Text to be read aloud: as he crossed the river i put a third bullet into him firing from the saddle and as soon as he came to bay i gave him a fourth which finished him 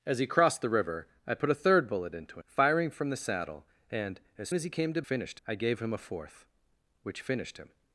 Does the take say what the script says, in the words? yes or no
no